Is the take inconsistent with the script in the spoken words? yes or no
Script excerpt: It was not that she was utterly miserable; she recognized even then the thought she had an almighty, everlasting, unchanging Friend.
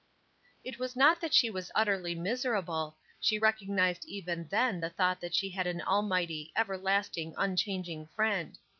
yes